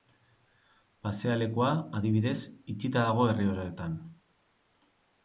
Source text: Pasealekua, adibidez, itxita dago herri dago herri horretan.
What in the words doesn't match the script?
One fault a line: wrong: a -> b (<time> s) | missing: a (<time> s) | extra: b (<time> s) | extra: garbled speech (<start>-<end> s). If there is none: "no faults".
missing: dago herri (3.5 s)